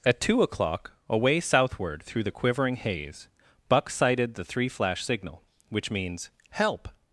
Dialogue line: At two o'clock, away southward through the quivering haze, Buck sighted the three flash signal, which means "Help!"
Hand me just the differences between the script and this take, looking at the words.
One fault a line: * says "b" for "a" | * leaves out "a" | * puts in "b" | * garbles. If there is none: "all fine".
all fine